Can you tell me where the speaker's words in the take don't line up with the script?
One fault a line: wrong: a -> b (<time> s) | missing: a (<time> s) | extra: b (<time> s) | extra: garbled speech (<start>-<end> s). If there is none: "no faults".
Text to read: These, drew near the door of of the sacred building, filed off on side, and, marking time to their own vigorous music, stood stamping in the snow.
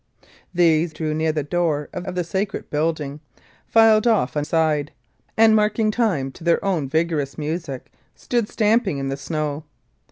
no faults